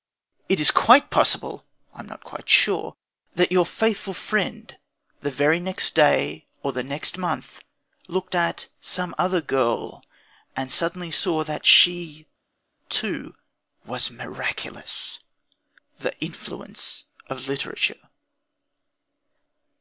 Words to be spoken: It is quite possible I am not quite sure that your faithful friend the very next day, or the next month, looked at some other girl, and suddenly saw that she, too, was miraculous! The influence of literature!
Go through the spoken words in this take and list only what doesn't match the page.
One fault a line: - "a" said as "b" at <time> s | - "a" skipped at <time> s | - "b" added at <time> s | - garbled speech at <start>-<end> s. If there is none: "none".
none